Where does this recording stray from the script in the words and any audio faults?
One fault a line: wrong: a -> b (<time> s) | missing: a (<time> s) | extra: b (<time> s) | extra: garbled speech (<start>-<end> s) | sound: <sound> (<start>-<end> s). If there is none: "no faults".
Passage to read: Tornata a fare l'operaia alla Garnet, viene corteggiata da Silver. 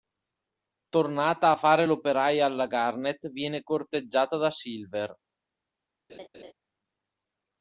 sound: laugh (6.1-6.5 s)